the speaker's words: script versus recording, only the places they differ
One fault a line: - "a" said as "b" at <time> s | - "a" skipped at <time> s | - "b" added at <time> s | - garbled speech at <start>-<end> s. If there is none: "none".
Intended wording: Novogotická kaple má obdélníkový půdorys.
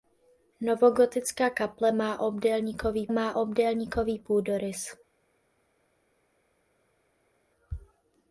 - "má obdélníkový" added at 3.1 s